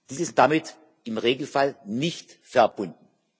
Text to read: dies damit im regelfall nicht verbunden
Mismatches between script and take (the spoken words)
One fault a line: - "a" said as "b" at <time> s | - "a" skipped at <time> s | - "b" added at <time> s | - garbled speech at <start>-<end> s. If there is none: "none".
- "ist" added at 0.2 s